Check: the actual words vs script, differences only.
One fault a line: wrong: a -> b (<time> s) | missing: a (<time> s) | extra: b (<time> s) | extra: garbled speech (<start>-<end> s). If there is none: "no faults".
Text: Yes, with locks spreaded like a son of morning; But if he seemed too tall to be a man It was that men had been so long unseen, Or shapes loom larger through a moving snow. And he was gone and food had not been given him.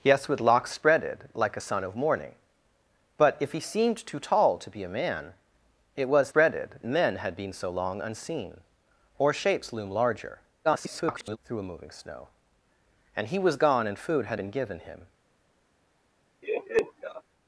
wrong: that -> spreaded (6.3 s)
extra: garbled speech (10.6-11.4 s)
missing: not (14.4 s)